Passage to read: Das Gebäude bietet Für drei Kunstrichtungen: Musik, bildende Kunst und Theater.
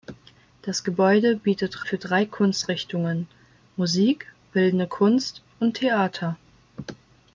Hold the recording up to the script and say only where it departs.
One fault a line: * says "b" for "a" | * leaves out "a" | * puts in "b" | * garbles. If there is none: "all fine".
all fine